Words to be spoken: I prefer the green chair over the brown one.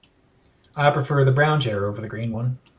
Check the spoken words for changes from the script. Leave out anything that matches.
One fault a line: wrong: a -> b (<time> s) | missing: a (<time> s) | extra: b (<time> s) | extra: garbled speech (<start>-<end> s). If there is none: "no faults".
wrong: green -> brown (1.3 s)
wrong: brown -> green (2.1 s)